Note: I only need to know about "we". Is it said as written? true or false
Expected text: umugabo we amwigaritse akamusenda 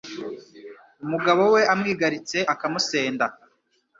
true